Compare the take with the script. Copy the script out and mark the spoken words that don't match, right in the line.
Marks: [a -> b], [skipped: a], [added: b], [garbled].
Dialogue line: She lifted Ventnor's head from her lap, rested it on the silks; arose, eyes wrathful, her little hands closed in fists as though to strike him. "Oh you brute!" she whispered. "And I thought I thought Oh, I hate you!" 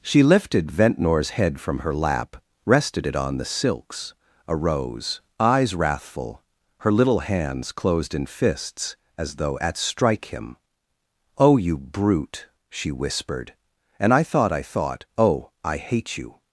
She lifted Ventnor's head from her lap, rested it on the silks; arose, eyes wrathful, her little hands closed in fists as though [to -> at] strike him. "Oh you brute!" she whispered. "And I thought I thought Oh, I hate you!"